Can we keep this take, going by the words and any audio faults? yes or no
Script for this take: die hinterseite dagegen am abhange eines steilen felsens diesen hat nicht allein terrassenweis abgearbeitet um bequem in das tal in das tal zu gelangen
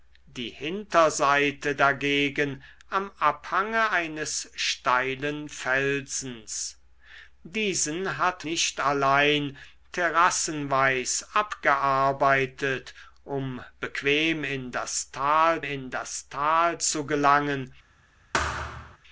no